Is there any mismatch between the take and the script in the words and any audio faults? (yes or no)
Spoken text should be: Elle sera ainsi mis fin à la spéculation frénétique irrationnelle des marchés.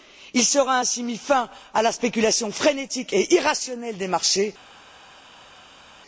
yes